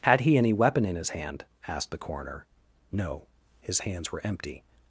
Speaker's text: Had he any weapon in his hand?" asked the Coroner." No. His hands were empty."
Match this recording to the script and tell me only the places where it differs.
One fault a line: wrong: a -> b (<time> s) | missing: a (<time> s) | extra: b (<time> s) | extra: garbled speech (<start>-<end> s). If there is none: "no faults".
no faults